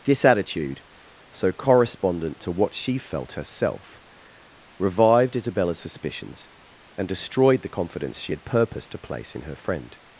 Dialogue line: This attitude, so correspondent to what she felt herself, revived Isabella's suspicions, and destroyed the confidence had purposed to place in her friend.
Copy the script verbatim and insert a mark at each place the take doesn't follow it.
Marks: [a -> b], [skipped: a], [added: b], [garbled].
This attitude, so correspondent to what she felt herself, revived Isabella's suspicions, and destroyed the confidence [added: she] had purposed to place in her friend.